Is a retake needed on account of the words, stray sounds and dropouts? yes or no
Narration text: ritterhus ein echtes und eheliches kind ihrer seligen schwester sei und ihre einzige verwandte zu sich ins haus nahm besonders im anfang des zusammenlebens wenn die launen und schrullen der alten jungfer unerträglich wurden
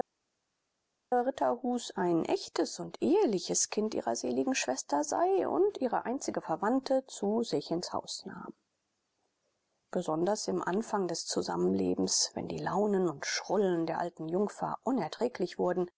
no